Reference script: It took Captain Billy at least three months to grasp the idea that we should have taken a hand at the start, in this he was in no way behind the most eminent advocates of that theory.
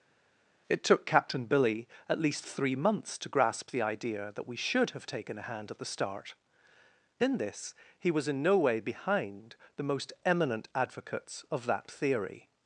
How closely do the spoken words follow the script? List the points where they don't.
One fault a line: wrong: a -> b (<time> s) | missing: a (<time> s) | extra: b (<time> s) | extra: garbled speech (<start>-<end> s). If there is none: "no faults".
no faults